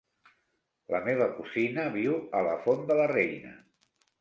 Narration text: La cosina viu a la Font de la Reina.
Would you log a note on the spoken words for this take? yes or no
yes